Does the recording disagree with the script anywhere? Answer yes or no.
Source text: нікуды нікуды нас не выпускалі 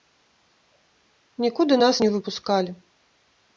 yes